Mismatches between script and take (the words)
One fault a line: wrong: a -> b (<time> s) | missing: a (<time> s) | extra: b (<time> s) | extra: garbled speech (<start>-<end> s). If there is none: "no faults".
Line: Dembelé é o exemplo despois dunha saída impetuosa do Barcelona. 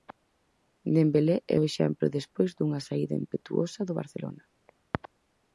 no faults